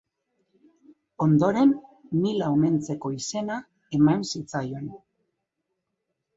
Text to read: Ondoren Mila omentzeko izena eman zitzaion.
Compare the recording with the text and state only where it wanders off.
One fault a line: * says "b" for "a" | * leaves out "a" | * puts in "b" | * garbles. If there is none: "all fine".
all fine